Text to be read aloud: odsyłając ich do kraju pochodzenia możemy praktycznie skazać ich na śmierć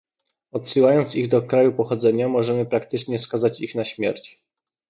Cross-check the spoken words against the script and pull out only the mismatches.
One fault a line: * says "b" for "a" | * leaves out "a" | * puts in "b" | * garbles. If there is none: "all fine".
all fine